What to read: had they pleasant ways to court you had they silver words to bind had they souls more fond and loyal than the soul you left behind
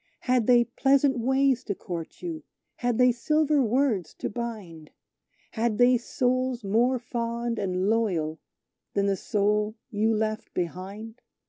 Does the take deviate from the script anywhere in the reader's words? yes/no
no